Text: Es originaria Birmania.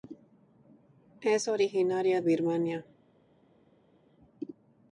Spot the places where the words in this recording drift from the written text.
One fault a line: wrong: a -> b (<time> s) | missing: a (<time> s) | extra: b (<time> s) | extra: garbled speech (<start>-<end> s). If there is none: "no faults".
no faults